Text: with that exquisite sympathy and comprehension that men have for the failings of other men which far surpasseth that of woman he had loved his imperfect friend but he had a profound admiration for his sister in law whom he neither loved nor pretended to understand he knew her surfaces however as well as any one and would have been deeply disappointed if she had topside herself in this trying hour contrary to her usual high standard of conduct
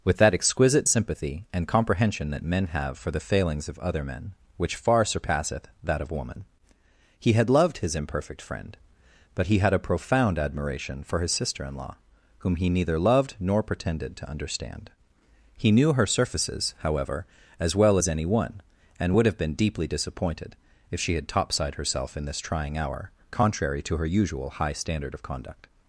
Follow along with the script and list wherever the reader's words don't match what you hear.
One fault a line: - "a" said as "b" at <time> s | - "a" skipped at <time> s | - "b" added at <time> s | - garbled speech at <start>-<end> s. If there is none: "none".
none